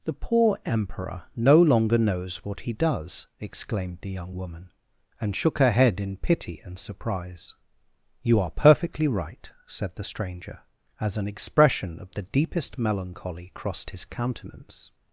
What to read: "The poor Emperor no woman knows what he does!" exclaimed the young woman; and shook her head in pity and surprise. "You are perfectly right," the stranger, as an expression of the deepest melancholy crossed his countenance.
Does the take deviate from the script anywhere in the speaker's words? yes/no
yes